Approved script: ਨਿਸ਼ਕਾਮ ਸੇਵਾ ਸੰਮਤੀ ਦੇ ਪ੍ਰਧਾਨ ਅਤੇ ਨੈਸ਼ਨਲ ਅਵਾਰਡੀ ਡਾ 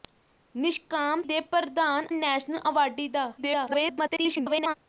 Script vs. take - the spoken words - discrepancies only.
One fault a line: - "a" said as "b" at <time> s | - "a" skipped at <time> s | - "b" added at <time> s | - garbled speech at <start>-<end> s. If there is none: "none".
- "ਸੇਵਾ ਸੰਮਤੀ" skipped at 1.2 s
- "ਅਤੇ" skipped at 2.1 s
- garbled speech at 3.4-4.7 s